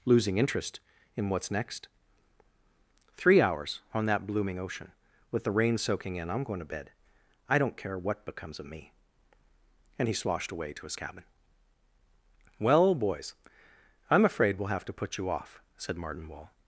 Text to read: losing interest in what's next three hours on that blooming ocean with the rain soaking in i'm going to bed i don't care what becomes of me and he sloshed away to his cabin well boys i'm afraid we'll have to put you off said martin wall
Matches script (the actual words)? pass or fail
pass